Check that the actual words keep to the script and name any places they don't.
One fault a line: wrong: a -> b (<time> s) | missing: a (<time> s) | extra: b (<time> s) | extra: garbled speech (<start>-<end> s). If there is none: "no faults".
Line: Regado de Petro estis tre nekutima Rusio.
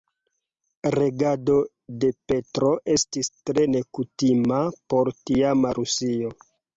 extra: por tiama (4.9 s)